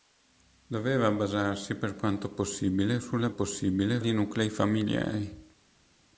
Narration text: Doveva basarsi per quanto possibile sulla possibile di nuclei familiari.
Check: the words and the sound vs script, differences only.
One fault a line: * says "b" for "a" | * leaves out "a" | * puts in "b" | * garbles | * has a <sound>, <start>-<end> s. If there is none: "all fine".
all fine